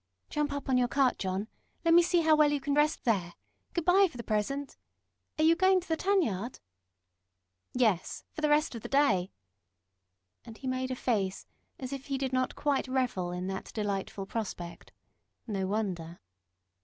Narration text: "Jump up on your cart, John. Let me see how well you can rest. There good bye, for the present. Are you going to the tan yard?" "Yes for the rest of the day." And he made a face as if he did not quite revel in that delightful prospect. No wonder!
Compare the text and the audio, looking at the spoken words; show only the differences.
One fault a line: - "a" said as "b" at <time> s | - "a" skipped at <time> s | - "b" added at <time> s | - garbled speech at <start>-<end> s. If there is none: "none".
none